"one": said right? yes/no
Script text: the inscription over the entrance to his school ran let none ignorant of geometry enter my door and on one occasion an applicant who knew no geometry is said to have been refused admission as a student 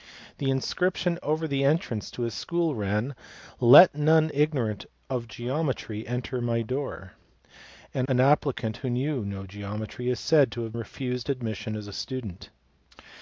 no